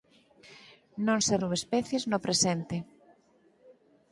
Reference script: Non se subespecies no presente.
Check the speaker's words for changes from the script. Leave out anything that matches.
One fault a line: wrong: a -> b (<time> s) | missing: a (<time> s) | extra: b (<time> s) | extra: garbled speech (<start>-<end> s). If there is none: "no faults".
no faults